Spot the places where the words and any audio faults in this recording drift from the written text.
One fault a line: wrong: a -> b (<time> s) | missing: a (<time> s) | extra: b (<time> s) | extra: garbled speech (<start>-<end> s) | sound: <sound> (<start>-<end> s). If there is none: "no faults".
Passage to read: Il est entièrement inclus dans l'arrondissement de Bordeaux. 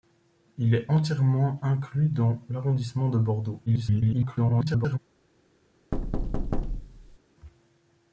extra: garbled speech (3.7-5.0 s)
sound: thud (5.9-7.2 s)